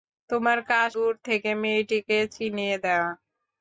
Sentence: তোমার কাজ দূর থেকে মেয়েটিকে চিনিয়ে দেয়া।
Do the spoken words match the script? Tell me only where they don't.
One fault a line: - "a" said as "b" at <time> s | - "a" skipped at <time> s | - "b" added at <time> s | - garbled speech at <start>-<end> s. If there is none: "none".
none